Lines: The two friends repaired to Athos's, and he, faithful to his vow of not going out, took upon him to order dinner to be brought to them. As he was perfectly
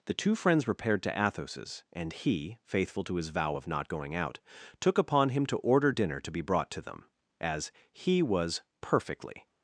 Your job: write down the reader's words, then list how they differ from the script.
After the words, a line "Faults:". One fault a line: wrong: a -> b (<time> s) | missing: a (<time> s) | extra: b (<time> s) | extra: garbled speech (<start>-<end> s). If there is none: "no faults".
The two friends repaired to Athos's, and he, faithful to his vow of not going out, took upon him to order dinner to be brought to them. As he was perfectly
Faults:
no faults